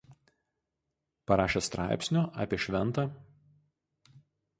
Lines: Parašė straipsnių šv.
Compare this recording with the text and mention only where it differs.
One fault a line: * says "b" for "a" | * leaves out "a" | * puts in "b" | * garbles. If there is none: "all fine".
* puts in "apie"